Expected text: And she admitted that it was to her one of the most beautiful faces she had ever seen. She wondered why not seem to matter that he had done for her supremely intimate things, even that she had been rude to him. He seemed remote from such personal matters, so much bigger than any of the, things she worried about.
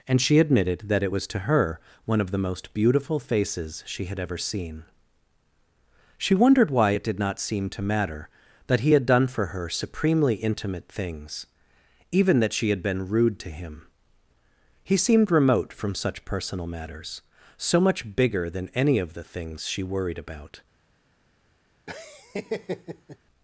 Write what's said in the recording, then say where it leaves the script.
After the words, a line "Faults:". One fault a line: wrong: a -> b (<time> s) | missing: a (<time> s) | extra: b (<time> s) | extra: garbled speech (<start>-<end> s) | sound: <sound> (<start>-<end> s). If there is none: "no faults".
And she admitted that it was to her one of the most beautiful faces she had ever seen. She wondered why it did not seem to matter that he had done for her supremely intimate things, even that she had been rude to him. He seemed remote from such personal matters, so much bigger than any of the, things she worried about.
Faults:
extra: it did (6.9 s)
sound: laugh (21.9-23.2 s)